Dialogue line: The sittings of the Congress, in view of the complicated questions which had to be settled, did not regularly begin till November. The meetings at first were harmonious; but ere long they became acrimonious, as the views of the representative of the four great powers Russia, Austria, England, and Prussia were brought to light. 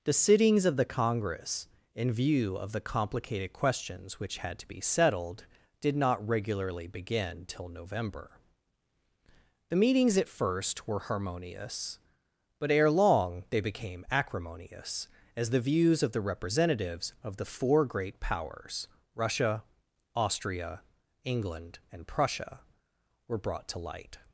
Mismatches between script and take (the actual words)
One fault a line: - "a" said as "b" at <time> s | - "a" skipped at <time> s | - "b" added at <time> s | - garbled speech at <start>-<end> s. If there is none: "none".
- "representative" said as "representatives" at 16.2 s